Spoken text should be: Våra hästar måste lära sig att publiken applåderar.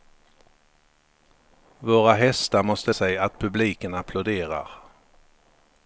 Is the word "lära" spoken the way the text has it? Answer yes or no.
no